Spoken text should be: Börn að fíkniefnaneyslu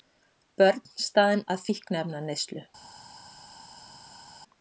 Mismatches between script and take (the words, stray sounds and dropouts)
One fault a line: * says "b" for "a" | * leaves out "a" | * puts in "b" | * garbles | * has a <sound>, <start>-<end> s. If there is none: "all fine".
* puts in "staðin"